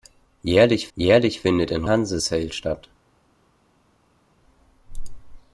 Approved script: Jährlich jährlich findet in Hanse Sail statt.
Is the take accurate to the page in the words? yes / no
yes